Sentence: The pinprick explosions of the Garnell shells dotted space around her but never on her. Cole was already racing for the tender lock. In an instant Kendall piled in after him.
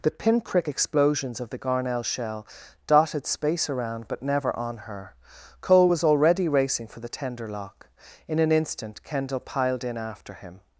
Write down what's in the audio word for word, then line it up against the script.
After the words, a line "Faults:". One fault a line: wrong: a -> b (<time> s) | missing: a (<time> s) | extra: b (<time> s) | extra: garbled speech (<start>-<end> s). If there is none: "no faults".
The pinprick explosions of the Garnell shell dotted space around but never on her. Cole was already racing for the tender lock. In an instant Kendall piled in after him.
Faults:
wrong: shells -> shell (2.0 s)
missing: her (4.1 s)